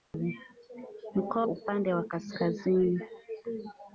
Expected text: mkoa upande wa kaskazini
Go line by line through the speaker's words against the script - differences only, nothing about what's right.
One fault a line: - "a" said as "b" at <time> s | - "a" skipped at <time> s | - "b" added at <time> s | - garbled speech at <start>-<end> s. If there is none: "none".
none